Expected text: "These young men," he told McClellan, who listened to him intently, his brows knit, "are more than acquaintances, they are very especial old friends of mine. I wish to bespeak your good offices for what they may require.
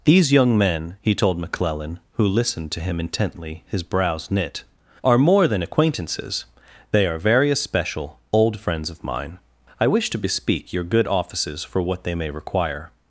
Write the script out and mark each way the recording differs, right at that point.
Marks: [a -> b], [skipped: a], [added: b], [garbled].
"These young men," he told McClellan, who listened to him intently, his brows knit, "are more than acquaintances, they are very especial old friends of mine. I wish to bespeak your good offices for what they may require.